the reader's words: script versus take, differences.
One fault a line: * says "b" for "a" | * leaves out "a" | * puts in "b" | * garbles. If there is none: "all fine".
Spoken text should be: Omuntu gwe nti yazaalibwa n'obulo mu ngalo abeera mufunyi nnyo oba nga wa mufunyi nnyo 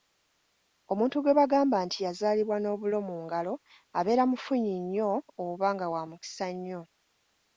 * puts in "bagamba"
* says "mukisa" for "mufunyi"